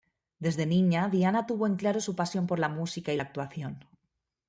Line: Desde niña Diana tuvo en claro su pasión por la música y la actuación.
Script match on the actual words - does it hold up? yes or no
yes